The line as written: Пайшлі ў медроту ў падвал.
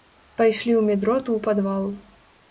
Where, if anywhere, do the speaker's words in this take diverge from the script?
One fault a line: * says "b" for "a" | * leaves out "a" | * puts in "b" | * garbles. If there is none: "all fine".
all fine